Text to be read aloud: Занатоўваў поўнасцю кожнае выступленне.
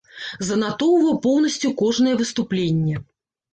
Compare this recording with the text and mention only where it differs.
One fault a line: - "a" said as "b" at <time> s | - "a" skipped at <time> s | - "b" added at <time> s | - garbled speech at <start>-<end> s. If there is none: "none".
none